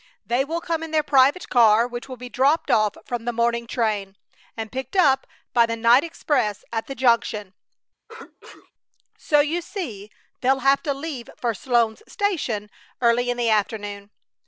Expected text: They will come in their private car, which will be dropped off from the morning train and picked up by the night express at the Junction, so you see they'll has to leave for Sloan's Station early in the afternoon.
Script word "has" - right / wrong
wrong